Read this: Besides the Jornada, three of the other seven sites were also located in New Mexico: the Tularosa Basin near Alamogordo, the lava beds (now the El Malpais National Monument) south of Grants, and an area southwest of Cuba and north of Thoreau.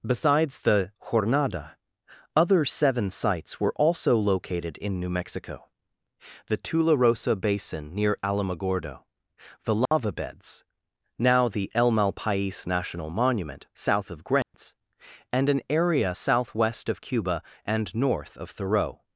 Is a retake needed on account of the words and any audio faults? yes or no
yes